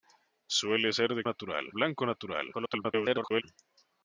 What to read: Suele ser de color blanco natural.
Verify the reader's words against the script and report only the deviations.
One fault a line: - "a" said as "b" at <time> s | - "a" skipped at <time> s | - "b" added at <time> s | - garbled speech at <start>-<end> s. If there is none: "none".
- "color" said as "natural" at 1.2 s
- garbled speech at 2.5-3.4 s